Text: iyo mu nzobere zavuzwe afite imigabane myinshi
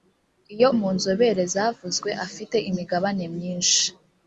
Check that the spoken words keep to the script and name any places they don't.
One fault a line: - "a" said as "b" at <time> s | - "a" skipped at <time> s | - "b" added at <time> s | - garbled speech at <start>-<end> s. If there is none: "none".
none